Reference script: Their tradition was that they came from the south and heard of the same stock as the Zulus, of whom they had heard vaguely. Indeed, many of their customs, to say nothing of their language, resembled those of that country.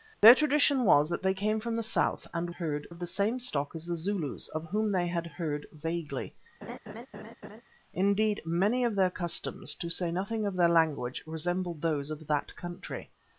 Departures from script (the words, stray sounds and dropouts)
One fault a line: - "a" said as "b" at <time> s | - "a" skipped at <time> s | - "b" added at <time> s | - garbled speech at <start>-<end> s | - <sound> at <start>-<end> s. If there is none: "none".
- laugh at 6.6-7.6 s